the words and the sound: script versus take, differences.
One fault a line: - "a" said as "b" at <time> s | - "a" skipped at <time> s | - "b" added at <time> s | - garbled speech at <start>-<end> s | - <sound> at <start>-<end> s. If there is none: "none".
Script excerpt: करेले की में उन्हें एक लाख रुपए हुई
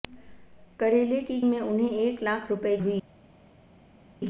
none